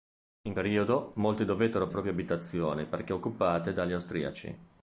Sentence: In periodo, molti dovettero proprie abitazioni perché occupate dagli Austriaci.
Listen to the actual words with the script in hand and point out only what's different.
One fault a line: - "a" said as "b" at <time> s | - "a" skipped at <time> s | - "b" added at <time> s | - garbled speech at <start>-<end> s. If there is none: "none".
none